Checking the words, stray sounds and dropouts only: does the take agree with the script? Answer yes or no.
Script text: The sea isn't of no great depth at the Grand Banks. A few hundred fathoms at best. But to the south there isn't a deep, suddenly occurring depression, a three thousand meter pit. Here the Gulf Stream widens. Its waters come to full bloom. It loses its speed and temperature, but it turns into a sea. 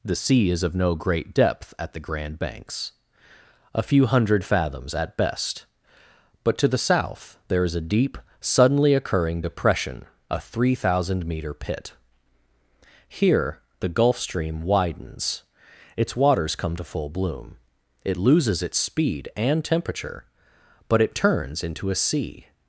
no